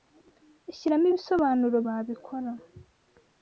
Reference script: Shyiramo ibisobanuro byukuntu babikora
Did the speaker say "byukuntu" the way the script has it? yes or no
no